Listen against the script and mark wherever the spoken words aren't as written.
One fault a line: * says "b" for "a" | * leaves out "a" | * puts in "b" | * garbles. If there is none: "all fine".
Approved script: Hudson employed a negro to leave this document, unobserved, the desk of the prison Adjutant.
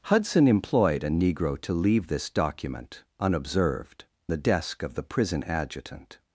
all fine